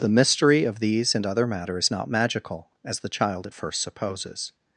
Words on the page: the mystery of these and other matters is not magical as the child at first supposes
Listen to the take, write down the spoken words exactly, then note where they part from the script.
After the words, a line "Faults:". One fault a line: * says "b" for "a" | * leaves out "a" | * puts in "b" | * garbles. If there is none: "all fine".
the mystery of these and other matter is not magical as the child at first supposes
Faults:
* says "matter" for "matters"